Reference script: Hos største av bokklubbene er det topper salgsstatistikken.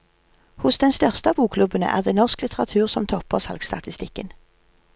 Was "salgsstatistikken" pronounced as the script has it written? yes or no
yes